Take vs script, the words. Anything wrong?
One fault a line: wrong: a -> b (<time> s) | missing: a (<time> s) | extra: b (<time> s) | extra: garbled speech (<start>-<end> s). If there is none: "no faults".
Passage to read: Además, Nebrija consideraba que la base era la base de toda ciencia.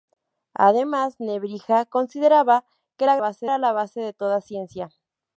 no faults